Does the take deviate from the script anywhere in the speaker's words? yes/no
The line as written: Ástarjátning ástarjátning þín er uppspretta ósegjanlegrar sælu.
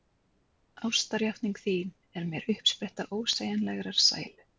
yes